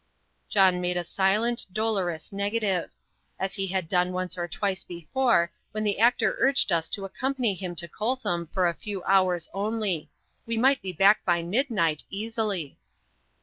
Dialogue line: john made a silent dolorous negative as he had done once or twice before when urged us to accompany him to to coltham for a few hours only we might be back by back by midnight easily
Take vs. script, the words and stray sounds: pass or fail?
fail